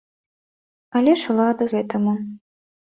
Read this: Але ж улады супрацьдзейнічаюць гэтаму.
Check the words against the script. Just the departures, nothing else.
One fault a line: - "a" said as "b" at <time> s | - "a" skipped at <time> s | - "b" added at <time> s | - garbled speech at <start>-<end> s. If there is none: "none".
- "супрацьдзейнічаюць" skipped at 1.7 s